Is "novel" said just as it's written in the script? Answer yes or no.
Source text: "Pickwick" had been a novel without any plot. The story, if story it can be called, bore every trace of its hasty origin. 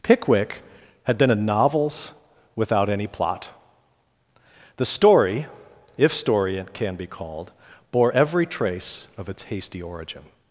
no